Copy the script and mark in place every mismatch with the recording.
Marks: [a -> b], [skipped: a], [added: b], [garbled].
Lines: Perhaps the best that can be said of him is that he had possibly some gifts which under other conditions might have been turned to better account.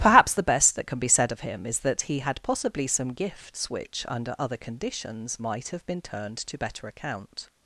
Perhaps the best that can be said of him is that he had possibly some gifts which under other conditions might have been turned to better account.